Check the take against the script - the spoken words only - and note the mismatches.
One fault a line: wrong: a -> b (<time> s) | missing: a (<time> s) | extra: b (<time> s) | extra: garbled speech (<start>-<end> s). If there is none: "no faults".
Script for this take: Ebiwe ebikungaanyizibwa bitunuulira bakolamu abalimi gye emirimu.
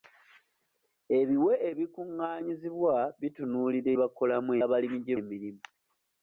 no faults